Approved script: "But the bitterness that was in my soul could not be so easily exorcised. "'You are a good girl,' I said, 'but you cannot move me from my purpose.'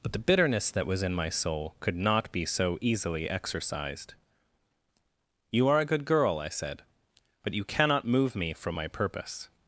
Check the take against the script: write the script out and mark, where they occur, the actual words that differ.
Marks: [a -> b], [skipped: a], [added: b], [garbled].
"But the bitterness that was in my soul could not be so easily exorcised. "'You are a good girl,' I said, 'but you cannot move me from my purpose.'